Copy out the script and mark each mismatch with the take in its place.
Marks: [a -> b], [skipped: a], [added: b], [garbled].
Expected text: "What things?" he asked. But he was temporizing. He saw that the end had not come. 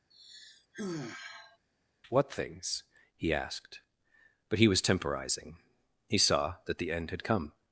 "What things?" he asked. But he was temporizing. He saw that the end had [skipped: not] come.